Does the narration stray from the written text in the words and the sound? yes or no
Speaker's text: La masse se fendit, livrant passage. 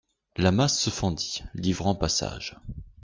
no